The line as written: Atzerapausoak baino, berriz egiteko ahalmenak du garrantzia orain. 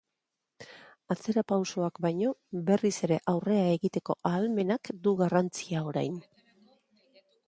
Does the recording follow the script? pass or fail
fail